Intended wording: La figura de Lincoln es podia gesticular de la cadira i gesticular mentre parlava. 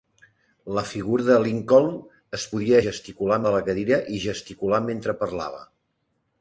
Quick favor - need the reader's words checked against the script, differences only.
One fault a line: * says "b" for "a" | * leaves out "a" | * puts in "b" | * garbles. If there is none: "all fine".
all fine